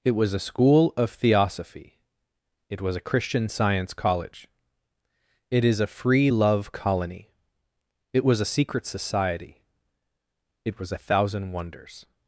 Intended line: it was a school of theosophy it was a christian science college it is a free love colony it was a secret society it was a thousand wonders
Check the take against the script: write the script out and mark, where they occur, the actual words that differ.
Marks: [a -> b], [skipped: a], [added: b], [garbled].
it was a school of theosophy it was a christian science college it is a free love colony it was a secret society it was a thousand wonders